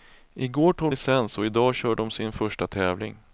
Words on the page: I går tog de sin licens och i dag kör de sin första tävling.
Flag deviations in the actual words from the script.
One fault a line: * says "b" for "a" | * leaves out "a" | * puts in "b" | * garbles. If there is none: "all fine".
* leaves out "de sin"